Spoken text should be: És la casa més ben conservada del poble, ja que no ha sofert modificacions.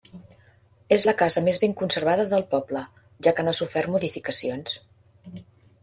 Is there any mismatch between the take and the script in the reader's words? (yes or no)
no